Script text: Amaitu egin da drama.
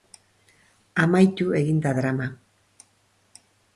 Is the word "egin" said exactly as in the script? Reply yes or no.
yes